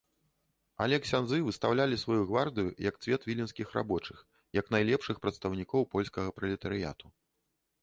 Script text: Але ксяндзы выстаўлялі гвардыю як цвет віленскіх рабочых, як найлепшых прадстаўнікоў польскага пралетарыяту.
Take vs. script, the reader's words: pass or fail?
fail